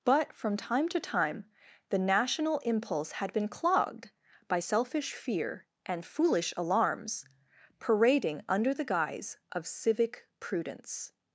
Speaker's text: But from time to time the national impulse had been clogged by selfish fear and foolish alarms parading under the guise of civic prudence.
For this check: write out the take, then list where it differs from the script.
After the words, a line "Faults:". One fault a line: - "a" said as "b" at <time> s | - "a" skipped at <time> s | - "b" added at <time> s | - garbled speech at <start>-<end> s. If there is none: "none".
But from time to time the national impulse had been clogged by selfish fear and foolish alarms parading under the guise of civic prudence.
Faults:
none